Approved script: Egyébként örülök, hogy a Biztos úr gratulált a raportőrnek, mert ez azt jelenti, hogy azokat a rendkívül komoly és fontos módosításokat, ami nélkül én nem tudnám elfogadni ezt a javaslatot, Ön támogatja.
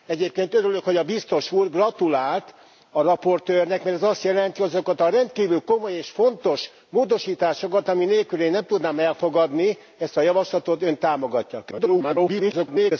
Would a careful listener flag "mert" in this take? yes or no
no